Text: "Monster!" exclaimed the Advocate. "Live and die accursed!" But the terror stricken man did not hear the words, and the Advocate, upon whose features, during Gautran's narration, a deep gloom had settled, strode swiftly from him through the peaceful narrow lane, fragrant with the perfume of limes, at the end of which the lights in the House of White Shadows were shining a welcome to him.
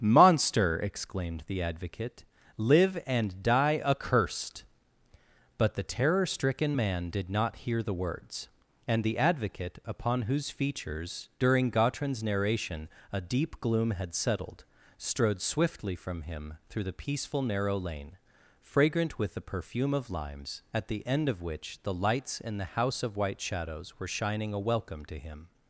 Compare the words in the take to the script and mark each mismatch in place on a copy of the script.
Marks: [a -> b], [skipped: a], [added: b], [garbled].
"Monster!" exclaimed the Advocate. "Live and die accursed!" But the terror stricken man did not hear the words, and the Advocate, upon whose features, during Gautran's narration, a deep gloom had settled, strode swiftly from him through the peaceful narrow lane, fragrant with the perfume of limes, at the end of which the lights in the House of White Shadows were shining a welcome to him.